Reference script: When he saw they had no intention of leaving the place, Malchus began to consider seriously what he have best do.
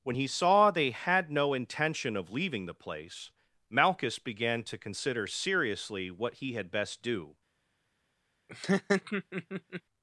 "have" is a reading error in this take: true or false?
true